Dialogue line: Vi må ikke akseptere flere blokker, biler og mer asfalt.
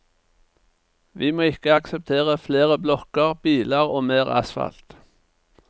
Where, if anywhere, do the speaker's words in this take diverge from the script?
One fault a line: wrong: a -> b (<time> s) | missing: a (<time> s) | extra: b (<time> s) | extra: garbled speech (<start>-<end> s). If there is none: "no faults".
no faults